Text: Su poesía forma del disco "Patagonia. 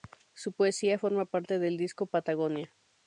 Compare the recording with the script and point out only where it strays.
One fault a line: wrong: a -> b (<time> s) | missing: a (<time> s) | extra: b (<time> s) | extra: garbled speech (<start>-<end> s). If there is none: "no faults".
extra: parte (1.3 s)